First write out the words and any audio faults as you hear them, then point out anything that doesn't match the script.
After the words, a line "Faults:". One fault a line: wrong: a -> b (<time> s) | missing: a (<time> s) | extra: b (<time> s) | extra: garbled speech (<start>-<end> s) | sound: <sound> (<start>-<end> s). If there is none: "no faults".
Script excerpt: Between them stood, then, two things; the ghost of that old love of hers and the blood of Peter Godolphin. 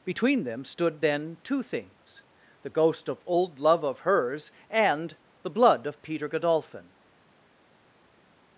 Between them stood, then, two things; the ghost of old love of hers and the blood of Peter Godolphin.
Faults:
missing: that (3.2 s)